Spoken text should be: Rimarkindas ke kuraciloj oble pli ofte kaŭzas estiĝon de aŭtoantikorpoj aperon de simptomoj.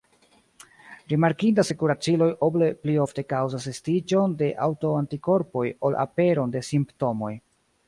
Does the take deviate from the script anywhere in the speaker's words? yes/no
yes